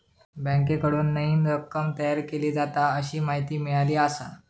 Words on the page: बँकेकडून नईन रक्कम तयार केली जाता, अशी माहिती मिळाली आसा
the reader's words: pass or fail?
pass